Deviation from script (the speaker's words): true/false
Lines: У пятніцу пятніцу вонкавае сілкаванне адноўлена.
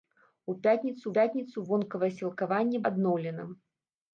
false